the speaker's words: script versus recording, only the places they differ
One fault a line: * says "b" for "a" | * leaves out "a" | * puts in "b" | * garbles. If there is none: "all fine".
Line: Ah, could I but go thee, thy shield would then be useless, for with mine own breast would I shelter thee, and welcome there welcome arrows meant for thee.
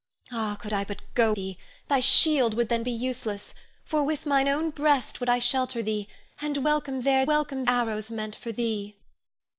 all fine